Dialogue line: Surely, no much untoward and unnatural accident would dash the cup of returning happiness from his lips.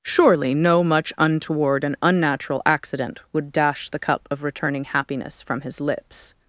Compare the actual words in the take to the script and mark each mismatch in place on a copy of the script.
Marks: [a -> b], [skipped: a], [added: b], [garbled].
Surely, no much untoward and unnatural accident would dash the cup of returning happiness from his lips.